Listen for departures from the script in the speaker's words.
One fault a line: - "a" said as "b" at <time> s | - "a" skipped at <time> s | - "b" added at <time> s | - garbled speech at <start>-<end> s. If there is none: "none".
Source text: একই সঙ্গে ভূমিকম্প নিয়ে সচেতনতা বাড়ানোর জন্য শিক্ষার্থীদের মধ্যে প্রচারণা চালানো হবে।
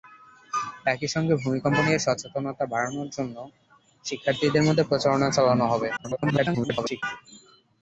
- garbled speech at 6.0-7.0 s